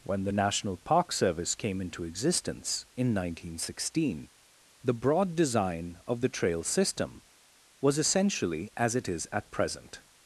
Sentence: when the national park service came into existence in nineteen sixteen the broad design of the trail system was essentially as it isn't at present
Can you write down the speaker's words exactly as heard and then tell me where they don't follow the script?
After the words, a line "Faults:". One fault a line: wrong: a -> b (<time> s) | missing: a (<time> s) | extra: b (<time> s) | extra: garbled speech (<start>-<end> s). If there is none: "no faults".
when the national park service came into existence in nineteen sixteen the broad design of the trail system was essentially as it is at present
Faults:
wrong: isn't -> is (9.1 s)